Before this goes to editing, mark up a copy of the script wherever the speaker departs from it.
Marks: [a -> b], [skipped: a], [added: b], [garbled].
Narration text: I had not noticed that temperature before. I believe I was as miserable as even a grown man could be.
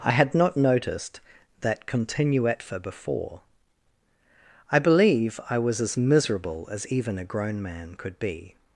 I had not noticed that [temperature -> continuetfa] before. I believe I was as miserable as even a grown man could be.